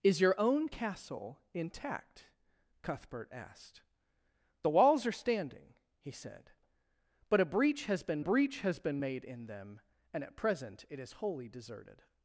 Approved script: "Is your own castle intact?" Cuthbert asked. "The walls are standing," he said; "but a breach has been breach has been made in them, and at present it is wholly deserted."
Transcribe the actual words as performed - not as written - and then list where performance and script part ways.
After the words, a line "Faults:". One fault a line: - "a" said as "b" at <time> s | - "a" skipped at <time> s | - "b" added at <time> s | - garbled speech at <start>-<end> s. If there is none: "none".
"Is your own castle intact?" Cuthbert asked. "The walls are standing," he said; "but a breach has been breach has been made in them, and at present it is wholly deserted."
Faults:
none